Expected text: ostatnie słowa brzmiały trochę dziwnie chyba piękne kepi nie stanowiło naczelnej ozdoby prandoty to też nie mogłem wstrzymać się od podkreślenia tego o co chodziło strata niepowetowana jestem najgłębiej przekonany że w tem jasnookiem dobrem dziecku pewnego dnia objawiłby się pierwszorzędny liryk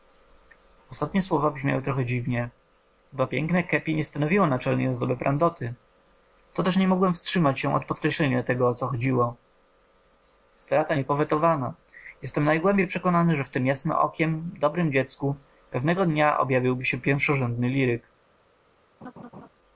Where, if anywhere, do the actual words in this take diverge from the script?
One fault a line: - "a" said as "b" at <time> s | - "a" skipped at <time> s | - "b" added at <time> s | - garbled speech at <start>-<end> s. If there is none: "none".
none